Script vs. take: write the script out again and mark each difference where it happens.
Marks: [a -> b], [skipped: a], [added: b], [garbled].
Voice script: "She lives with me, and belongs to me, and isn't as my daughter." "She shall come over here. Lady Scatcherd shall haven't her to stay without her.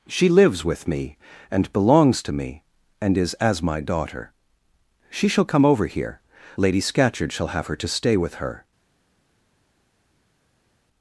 "She lives with me, and belongs to me, and [isn't -> is] as my daughter." "She shall come over here. Lady Scatcherd shall [haven't -> have] her to stay [without -> with] her.